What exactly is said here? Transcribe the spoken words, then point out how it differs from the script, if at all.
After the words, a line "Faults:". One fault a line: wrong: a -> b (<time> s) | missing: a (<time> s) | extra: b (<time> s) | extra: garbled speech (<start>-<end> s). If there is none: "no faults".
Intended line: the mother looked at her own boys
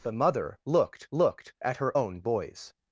the mother looked looked at her own boys
Faults:
extra: looked (1.1 s)